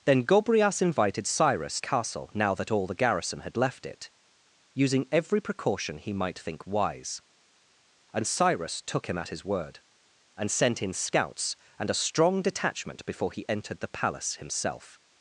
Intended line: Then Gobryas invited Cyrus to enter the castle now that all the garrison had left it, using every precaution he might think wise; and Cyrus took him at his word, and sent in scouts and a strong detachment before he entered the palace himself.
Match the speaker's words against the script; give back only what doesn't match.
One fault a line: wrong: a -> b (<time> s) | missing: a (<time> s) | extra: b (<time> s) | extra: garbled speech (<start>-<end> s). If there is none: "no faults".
missing: to enter the (1.8 s)